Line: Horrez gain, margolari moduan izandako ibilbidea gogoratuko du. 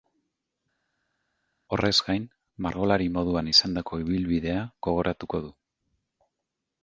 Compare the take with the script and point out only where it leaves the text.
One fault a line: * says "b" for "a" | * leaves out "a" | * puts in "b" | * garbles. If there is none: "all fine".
all fine